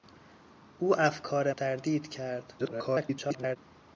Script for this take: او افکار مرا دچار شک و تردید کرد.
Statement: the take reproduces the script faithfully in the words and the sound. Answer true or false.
false